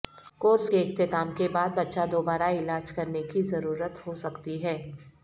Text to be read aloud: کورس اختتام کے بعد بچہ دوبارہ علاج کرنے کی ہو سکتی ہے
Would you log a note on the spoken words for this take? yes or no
yes